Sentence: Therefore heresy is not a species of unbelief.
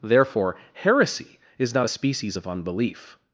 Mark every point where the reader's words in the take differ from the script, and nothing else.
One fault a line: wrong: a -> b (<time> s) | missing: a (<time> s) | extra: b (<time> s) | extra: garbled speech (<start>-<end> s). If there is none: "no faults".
no faults